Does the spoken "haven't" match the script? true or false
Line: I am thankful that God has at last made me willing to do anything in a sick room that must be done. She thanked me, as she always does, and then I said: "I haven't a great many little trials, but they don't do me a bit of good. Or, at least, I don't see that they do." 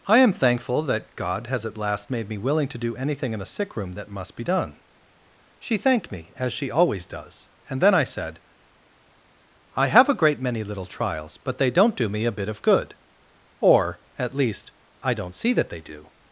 false